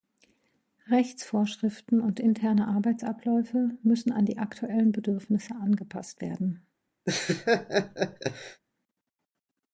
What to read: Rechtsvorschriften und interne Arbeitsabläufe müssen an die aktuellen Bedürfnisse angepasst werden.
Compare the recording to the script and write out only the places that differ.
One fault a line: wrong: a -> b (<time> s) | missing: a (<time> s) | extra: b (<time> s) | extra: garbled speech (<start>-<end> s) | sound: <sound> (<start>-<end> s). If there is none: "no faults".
sound: laugh (7.1-8.6 s)